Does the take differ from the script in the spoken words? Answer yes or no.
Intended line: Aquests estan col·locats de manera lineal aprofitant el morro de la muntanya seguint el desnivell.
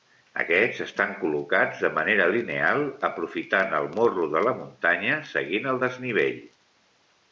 no